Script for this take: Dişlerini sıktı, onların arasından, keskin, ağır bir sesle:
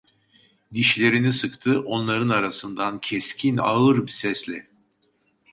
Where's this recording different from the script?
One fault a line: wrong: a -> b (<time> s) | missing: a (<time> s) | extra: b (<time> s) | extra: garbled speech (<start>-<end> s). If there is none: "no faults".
missing: bir (4.1 s)